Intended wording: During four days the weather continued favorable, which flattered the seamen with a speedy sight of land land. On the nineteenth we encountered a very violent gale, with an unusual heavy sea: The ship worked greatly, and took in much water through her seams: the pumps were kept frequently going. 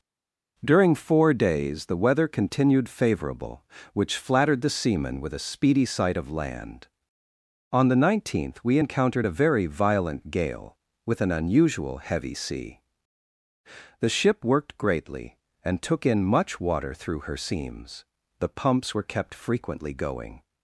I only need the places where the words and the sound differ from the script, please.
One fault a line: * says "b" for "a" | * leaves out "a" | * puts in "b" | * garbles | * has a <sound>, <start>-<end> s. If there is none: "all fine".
* leaves out "land"